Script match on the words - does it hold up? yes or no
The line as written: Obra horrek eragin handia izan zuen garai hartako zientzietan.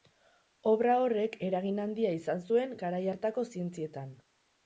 yes